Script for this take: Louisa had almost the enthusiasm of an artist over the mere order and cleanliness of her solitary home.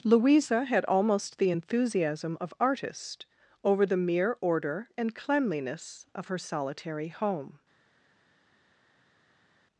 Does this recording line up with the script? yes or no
no